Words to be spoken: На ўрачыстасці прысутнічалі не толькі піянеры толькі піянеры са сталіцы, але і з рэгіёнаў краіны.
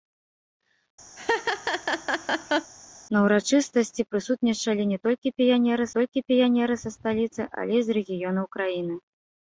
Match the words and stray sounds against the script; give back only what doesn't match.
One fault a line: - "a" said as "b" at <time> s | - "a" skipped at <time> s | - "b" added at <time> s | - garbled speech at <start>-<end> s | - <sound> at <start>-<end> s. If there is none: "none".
- laugh at 1.2-2.7 s